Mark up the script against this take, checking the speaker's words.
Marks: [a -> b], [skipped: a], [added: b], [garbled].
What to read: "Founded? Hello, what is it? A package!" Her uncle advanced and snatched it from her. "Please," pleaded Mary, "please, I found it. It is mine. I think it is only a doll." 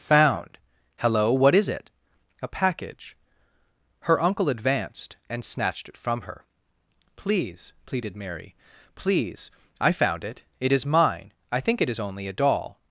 ["Founded? -> Found] Hello, what is it? A package!" Her uncle advanced and snatched it from her. "Please," pleaded Mary, "please, I found it. It is mine. I think it is only a doll."